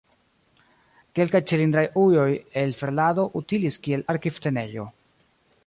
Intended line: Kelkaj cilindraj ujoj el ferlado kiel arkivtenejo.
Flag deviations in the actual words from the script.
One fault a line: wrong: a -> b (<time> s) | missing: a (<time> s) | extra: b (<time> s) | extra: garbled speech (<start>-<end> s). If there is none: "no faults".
extra: utilis (3.4 s)